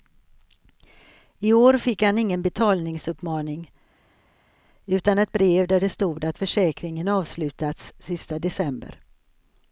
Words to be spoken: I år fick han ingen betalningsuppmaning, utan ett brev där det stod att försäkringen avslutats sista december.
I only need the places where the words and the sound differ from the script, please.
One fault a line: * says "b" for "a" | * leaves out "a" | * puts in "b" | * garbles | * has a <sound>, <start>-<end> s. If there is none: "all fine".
all fine